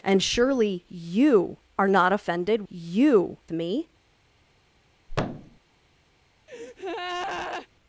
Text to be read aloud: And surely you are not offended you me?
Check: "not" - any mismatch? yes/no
no